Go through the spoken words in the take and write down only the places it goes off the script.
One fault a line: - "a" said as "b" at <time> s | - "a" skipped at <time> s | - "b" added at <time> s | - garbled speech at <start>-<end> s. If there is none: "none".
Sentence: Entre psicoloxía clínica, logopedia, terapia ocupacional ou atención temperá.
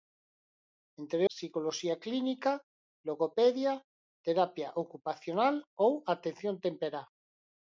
none